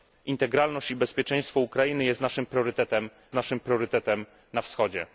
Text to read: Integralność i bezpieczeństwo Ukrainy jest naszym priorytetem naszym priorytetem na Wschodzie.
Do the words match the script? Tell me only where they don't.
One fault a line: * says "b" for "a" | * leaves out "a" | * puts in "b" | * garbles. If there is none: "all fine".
all fine